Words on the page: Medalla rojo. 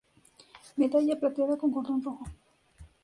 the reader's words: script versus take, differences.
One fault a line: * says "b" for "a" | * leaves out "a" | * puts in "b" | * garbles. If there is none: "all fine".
* puts in "plateada con cordón"